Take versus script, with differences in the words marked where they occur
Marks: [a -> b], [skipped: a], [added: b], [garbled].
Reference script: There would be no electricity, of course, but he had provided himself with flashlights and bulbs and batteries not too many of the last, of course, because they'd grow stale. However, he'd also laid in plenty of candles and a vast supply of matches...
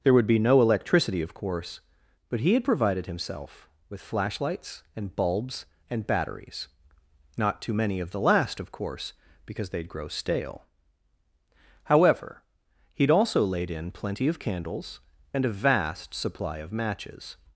There would be no electricity, of course, but he had provided himself with flashlights and bulbs and batteries not too many of the last, of course, because they'd grow stale. However, he'd also laid in plenty of candles and a vast supply of matches...